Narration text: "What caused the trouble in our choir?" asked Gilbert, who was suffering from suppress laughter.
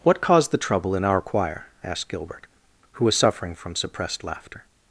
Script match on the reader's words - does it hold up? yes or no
no